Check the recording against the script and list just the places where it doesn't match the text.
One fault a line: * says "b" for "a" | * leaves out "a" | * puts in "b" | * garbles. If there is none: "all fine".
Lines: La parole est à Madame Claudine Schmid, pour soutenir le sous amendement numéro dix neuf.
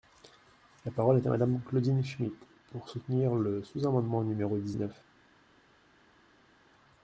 all fine